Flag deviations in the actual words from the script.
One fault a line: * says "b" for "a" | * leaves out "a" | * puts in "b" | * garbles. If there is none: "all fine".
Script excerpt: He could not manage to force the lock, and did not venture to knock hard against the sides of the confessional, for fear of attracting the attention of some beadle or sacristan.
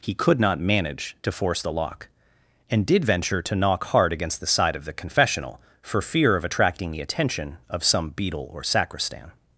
* leaves out "not"
* says "side" for "sides"